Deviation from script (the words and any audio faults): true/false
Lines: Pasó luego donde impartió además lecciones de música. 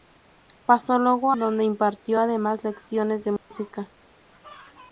true